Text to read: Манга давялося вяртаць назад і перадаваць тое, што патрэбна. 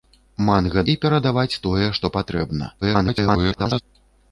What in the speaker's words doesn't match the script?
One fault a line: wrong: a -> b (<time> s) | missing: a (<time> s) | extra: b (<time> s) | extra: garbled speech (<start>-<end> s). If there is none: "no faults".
missing: давялося вяртаць назад (0.8 s)
extra: garbled speech (2.8-3.8 s)